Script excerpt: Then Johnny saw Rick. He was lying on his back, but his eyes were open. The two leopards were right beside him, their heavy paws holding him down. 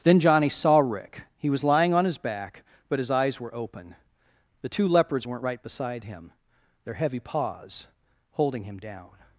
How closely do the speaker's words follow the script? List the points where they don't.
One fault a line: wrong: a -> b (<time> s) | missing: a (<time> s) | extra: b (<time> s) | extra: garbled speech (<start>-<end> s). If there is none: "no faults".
wrong: were -> weren't (5.3 s)